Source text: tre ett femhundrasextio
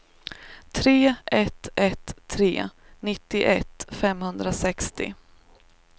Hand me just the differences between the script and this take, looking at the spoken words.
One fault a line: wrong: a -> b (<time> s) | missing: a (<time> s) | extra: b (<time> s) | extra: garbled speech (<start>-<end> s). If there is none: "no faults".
extra: ett tre nittioett (1.8 s)